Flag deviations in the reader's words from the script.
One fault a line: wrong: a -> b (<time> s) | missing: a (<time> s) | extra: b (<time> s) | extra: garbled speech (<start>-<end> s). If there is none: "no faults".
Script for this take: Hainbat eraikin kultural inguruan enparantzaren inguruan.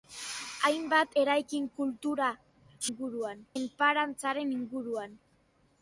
no faults